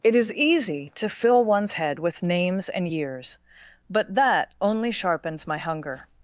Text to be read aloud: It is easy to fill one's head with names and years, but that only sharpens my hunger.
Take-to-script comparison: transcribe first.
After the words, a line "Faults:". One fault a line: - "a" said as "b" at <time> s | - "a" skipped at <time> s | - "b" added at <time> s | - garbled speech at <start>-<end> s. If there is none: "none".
It is easy to fill one's head with names and years, but that only sharpens my hunger.
Faults:
none